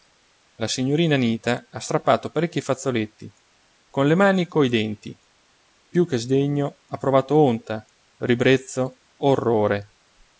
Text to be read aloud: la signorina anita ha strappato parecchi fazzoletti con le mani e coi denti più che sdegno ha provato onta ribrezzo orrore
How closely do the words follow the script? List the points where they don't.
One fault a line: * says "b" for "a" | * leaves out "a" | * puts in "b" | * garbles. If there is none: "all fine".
all fine